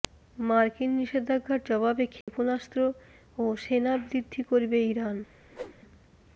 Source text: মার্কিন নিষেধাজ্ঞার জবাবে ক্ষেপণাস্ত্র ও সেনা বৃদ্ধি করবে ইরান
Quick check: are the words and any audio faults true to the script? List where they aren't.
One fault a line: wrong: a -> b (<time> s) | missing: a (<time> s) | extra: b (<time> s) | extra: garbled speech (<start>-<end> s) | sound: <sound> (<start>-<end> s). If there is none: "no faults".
sound: dropout (2.2-2.3 s)
sound: whoosh (5.5-5.8 s)